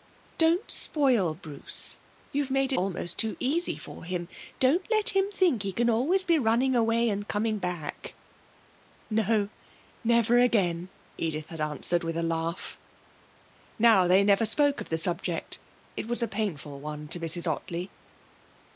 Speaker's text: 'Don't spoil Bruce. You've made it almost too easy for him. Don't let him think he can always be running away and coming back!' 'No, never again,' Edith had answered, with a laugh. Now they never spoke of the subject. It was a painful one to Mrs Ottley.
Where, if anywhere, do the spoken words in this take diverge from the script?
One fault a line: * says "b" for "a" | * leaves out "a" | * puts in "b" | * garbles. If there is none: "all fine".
* leaves out "it"